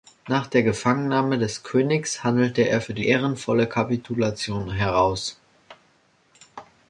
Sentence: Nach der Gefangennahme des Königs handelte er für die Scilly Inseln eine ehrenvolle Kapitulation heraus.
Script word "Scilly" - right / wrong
wrong